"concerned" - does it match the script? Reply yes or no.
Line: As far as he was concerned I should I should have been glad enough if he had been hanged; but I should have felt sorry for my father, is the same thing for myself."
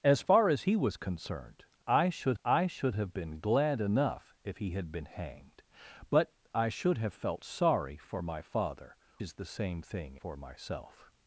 yes